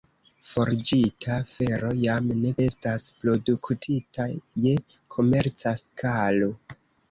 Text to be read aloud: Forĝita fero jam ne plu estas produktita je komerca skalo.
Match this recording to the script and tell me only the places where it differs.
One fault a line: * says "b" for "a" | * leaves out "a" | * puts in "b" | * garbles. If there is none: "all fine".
* leaves out "plu"